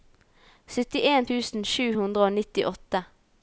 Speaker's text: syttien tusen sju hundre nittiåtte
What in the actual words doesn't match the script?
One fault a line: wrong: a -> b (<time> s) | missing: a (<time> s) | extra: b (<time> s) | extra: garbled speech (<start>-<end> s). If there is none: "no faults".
extra: og (2.3 s)